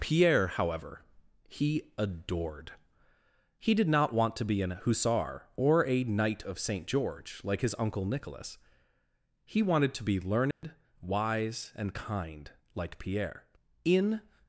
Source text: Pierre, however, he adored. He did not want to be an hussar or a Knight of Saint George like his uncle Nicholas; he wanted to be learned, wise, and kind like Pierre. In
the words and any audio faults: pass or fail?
fail